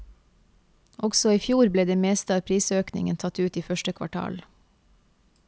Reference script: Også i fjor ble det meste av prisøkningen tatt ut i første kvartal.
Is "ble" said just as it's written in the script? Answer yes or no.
yes